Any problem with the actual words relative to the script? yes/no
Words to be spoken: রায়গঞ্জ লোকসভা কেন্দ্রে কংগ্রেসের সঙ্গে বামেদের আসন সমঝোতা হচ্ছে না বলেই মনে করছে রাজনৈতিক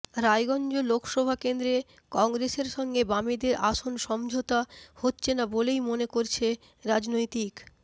no